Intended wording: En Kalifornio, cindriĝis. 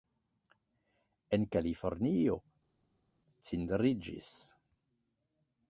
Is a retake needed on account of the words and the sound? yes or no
no